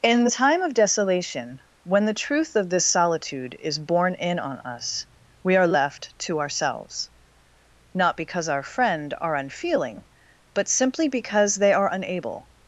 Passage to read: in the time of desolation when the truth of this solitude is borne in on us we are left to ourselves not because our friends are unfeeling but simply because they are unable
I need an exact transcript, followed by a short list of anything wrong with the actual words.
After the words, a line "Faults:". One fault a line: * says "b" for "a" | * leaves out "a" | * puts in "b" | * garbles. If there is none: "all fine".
in the time of desolation when the truth of this solitude is borne in on us we are left to ourselves not because our friend are unfeeling but simply because they are unable
Faults:
* says "friend" for "friends"